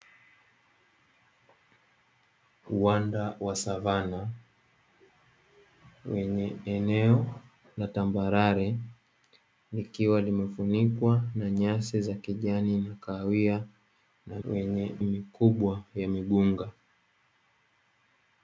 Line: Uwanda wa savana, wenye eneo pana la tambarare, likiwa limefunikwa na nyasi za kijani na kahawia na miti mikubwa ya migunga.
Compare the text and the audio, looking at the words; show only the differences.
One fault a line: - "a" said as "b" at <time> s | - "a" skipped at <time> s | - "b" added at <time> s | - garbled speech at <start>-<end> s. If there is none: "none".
- "pana" skipped at 7.4 s
- "miti" said as "wenye" at 14.4 s